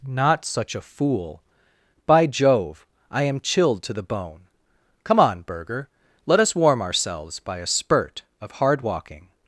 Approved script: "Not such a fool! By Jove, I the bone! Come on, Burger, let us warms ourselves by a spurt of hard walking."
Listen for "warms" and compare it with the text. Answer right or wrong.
wrong